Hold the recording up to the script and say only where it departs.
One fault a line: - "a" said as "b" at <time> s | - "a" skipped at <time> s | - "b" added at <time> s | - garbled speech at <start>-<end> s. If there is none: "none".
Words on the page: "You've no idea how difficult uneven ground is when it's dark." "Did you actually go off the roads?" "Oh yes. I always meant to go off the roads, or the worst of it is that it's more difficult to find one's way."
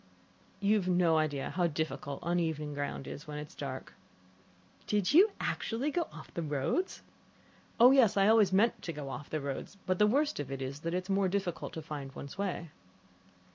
- "or" said as "but" at 9.8 s